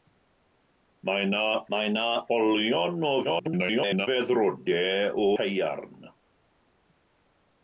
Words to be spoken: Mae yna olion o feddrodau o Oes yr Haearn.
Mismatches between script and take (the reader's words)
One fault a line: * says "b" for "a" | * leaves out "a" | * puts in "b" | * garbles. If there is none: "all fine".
* puts in "mae yna"
* garbles
* leaves out "Oes yr"